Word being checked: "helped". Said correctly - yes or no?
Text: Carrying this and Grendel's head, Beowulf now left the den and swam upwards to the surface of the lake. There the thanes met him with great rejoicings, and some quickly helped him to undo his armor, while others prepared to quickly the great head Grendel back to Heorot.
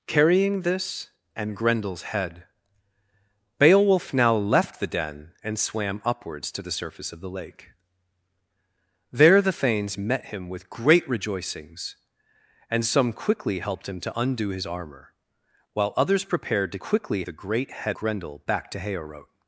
yes